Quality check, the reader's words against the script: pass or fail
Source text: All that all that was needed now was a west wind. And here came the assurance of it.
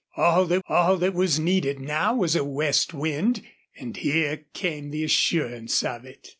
pass